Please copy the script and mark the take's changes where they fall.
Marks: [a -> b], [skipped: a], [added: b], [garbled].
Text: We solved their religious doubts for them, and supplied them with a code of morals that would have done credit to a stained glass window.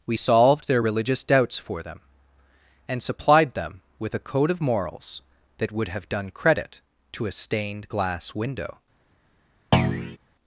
We solved their religious doubts for them, and supplied them with a code of morals that would have done credit to a stained glass window.